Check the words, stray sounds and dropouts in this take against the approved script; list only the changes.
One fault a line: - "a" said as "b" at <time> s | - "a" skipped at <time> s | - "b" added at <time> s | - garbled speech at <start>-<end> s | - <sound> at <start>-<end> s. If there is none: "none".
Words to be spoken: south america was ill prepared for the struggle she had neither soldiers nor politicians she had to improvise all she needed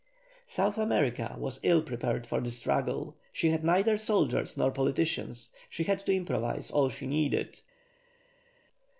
none